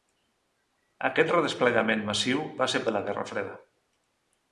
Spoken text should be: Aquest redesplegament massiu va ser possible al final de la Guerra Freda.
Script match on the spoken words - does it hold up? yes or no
no